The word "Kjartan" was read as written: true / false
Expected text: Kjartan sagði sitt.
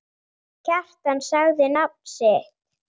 true